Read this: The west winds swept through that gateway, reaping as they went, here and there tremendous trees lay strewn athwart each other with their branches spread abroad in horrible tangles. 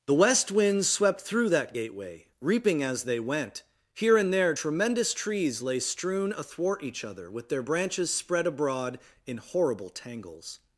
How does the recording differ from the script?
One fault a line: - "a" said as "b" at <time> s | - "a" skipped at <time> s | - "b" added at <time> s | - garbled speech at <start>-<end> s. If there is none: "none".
none